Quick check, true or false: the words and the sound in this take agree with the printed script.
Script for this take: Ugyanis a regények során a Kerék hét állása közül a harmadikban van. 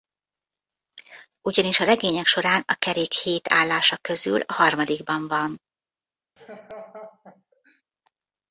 false